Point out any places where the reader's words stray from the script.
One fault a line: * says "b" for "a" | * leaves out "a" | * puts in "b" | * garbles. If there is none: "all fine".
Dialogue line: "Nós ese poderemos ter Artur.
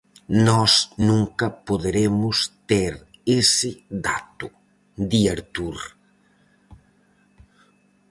* says "nunca" for "ese"
* puts in "ese dato di"